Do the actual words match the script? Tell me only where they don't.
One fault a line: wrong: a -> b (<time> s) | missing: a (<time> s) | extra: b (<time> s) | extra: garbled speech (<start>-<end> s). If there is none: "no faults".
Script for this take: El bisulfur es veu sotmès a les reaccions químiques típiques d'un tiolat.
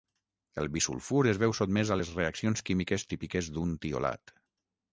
no faults